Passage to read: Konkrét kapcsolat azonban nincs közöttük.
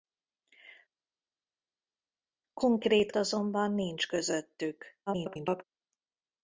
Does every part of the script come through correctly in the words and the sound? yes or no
no